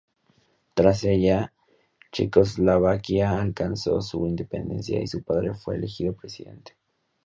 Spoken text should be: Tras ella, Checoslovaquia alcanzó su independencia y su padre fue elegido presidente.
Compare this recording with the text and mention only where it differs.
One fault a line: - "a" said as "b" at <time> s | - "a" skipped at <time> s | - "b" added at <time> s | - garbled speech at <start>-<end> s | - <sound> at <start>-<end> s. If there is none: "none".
none